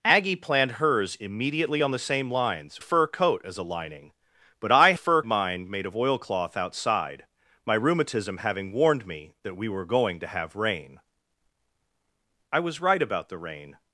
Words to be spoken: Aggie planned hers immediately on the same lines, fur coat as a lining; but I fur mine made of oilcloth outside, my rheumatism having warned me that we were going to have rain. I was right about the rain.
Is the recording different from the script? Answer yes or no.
no